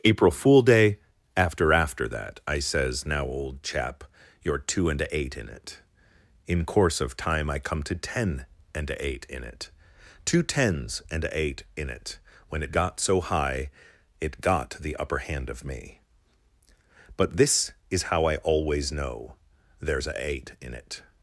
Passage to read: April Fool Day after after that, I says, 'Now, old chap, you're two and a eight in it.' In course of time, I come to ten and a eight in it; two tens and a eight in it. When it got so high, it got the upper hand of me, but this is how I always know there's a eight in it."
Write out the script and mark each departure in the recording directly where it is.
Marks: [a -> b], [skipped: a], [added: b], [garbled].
April Fool Day after after that, I says, 'Now, old chap, you're two and a eight in it.' In course of time, I come to ten and a eight in it; two tens and a eight in it. When it got so high, it got the upper hand of me, but this is how I always know there's a eight in it."